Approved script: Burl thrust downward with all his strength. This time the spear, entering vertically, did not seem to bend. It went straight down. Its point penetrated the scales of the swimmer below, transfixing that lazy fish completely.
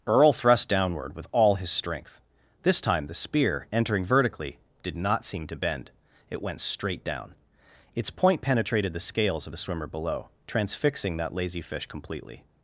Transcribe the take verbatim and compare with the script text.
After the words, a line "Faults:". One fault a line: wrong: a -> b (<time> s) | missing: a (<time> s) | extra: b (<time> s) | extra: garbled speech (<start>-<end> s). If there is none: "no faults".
Earl thrust downward with all his strength. This time the spear, entering vertically, did not seem to bend. It went straight down. Its point penetrated the scales of the swimmer below, transfixing that lazy fish completely.
Faults:
wrong: Burl -> Earl (0.1 s)